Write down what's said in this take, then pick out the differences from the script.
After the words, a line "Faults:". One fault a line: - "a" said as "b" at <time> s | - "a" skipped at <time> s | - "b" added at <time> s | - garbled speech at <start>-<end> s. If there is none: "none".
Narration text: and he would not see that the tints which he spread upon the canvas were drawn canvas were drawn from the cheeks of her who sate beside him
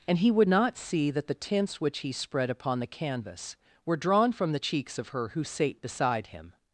and he would not see that the tints which he spread upon the canvas were drawn from the cheeks of her who sate beside him
Faults:
- "canvas were drawn" skipped at 4.3 s